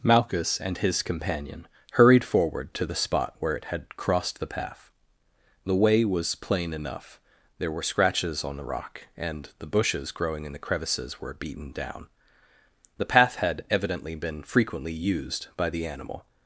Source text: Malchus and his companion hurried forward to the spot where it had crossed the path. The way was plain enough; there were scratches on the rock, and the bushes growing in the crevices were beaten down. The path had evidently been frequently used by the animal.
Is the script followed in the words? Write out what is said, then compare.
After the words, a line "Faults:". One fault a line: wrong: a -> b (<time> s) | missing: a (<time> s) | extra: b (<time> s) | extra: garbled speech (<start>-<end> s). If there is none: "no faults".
Malchus and his companion hurried forward to the spot where it had crossed the path. The way was plain enough; there were scratches on the rock, and the bushes growing in the crevices were beaten down. The path had evidently been frequently used by the animal.
Faults:
no faults